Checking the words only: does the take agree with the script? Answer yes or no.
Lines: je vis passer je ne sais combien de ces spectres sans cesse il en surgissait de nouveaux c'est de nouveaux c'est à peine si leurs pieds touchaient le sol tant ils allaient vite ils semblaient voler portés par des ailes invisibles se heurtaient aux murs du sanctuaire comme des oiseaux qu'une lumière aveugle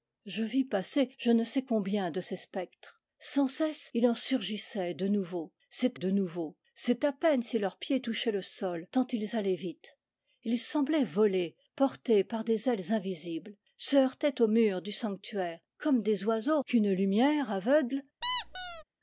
yes